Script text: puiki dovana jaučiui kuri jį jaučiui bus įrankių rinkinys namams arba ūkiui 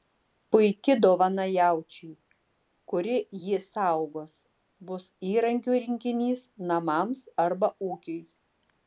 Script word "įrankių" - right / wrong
right